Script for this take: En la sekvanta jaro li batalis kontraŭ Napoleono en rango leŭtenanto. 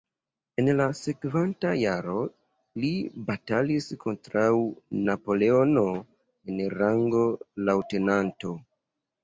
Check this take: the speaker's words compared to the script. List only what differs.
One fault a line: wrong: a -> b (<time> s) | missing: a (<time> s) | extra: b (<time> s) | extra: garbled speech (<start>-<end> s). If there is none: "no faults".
no faults